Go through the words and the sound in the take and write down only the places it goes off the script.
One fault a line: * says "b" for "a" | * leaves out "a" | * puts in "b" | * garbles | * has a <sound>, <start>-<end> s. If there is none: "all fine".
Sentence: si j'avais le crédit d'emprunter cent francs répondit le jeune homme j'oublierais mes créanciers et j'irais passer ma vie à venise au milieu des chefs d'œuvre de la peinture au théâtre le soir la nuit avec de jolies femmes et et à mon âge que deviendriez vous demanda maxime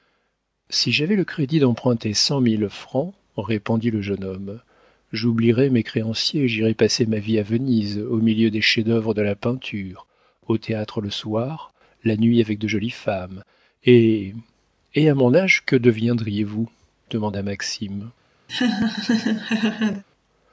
* puts in "mille"
* has a laugh, 18.5-20.0 s